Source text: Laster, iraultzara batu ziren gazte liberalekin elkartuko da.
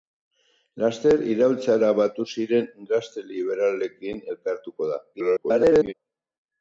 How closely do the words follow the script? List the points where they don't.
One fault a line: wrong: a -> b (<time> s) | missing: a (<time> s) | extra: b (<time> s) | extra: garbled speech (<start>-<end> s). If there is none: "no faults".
extra: garbled speech (5.1-5.9 s)